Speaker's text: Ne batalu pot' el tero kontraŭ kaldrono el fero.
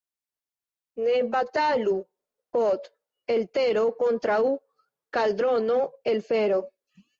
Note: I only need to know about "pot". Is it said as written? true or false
true